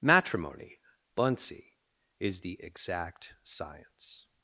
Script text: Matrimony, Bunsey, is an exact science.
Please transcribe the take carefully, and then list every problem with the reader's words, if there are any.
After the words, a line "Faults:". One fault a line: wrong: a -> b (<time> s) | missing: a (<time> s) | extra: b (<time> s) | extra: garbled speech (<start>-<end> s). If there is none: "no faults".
Matrimony, Bunsey, is the exact science.
Faults:
wrong: an -> the (2.4 s)